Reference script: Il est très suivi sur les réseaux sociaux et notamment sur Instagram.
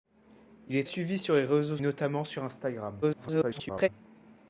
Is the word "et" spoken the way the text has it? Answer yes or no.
no